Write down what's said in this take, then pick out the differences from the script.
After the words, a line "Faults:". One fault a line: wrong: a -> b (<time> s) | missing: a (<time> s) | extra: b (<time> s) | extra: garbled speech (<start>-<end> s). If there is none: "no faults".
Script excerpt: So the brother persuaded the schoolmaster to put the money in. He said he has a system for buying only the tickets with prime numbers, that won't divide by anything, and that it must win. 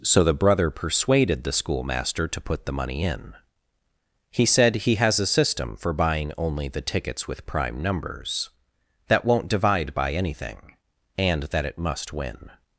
So the brother persuaded the schoolmaster to put the money in. He said he has a system for buying only the tickets with prime numbers, that won't divide by anything, and that it must win.
Faults:
no faults